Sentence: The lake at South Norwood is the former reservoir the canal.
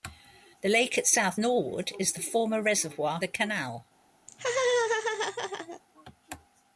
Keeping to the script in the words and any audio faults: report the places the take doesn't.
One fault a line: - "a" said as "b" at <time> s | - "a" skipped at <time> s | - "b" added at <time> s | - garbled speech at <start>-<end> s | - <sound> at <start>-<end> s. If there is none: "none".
- laugh at 4.3-5.8 s